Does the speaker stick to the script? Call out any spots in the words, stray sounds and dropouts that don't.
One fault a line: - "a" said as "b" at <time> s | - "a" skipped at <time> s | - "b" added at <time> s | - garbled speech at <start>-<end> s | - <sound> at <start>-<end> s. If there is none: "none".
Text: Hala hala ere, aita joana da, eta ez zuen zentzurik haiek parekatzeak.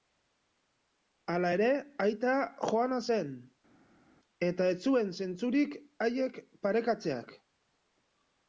- "hala" skipped at 1.5 s
- "da" said as "zen" at 3.1 s